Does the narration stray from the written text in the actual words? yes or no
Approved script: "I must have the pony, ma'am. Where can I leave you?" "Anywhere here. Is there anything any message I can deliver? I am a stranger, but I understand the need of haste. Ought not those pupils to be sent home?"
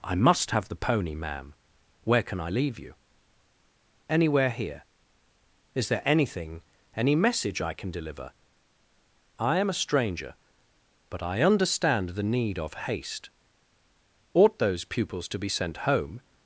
yes